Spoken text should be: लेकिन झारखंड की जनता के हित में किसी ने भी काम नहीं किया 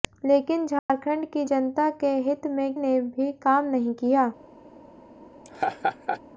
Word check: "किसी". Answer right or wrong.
wrong